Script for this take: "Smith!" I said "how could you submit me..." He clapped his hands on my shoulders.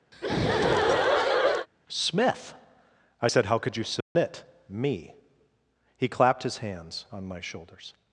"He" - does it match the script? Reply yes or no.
yes